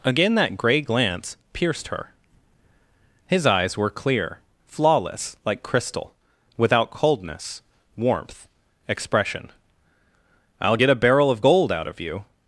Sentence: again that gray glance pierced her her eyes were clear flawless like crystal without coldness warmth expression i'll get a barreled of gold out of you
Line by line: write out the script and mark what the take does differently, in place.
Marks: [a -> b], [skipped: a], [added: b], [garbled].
again that gray glance pierced her [her -> his] eyes were clear flawless like crystal without coldness warmth expression i'll get a [barreled -> barrel] of gold out of you